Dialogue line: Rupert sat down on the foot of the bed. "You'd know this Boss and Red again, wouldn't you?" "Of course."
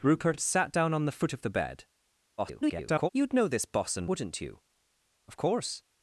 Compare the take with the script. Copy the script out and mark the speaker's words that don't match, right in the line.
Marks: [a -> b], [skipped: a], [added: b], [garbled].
Rupert sat down on the foot of the bed. [garbled] "You'd know this Boss and [skipped: Red again,] wouldn't you?" "Of course."